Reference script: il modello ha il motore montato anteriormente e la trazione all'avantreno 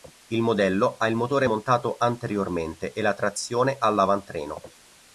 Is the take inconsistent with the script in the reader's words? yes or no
no